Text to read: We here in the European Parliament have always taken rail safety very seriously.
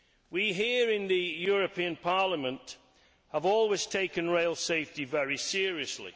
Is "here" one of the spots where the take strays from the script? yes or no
no